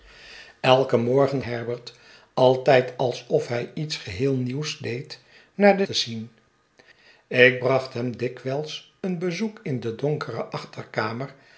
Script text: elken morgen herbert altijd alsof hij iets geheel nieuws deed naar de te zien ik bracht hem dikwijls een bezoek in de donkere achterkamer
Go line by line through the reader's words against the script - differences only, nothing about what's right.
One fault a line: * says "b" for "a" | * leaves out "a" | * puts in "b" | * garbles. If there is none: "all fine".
all fine